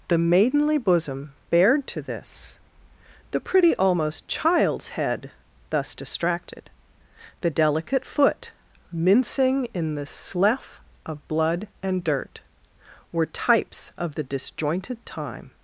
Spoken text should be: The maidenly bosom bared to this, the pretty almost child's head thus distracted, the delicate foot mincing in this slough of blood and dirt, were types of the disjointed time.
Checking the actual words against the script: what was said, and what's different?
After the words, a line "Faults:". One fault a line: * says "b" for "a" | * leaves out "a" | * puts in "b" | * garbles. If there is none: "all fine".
The maidenly bosom bared to this, the pretty almost child's head thus distracted, the delicate foot mincing in the slough of blood and dirt, were types of the disjointed time.
Faults:
* says "the" for "this"